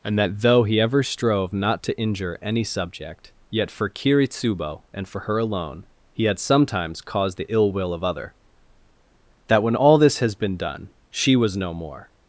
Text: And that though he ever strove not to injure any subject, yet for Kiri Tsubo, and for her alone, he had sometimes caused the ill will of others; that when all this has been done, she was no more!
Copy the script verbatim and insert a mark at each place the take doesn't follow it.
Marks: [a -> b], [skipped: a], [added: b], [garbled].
And that though he ever strove not to injure any subject, yet for Kiri Tsubo, and for her alone, he had sometimes caused the ill will of [others; -> other] that when all this has been done, she was no more!